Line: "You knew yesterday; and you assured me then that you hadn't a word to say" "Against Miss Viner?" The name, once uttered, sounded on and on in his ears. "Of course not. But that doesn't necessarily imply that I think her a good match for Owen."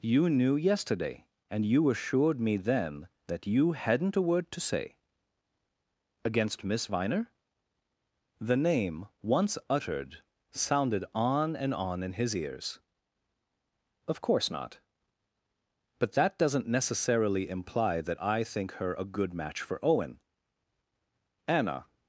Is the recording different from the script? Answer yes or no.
yes